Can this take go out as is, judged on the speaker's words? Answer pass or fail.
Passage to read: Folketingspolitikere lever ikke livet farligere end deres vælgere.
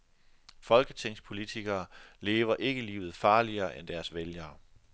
pass